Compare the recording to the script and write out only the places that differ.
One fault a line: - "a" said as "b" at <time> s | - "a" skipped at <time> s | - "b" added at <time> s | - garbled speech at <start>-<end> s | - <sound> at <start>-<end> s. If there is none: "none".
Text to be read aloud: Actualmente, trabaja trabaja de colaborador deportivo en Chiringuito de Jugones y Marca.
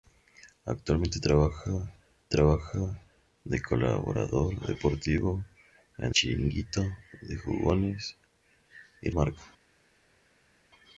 none